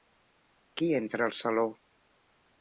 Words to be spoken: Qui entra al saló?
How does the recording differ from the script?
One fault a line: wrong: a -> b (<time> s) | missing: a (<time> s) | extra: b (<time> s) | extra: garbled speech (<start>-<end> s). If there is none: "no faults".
no faults